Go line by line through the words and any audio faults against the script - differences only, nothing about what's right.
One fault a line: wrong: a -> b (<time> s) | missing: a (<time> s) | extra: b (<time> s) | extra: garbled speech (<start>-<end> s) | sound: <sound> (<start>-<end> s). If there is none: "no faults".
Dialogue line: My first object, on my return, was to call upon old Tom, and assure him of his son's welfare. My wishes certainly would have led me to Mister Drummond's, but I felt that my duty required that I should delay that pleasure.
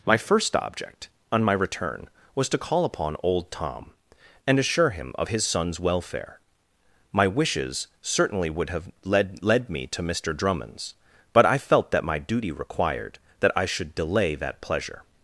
extra: led (9.4 s)